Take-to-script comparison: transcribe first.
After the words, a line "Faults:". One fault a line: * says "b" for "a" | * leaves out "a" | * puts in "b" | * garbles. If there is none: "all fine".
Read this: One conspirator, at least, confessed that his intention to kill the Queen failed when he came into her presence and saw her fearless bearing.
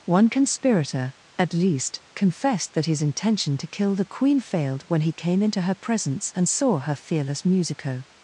One conspirator, at least, confessed that his intention to kill the Queen failed when he came into her presence and saw her fearless musico.
Faults:
* says "musico" for "bearing"